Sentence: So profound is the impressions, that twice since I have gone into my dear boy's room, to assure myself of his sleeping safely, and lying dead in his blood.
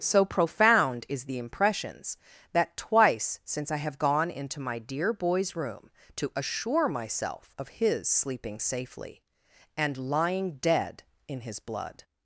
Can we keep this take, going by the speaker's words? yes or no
yes